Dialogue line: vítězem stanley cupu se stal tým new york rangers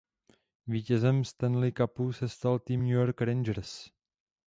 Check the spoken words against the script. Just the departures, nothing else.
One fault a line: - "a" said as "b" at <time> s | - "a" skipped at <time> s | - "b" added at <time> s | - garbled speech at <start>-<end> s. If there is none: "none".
none